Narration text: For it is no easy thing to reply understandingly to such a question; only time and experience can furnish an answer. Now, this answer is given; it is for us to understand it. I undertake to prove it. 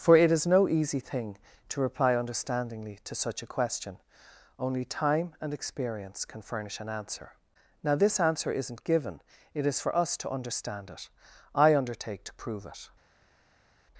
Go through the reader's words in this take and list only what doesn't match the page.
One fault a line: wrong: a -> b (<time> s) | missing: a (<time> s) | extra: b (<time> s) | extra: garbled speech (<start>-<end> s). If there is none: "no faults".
wrong: is -> isn't (8.5 s)